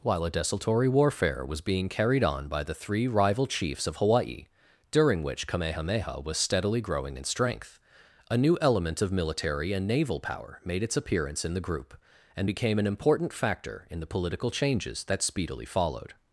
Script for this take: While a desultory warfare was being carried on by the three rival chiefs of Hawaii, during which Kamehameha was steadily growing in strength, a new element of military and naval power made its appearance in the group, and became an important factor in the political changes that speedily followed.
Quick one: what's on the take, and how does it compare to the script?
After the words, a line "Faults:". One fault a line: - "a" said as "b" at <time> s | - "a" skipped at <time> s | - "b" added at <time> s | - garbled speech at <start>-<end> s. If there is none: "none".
While a desultory warfare was being carried on by the three rival chiefs of Hawaii, during which Kamehameha was steadily growing in strength, a new element of military and naval power made its appearance in the group, and became an important factor in the political changes that speedily followed.
Faults:
none